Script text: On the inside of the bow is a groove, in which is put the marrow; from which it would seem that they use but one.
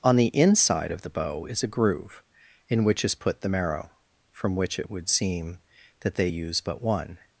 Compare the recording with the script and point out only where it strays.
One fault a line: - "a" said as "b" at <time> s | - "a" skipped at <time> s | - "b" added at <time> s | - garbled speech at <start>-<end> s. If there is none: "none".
none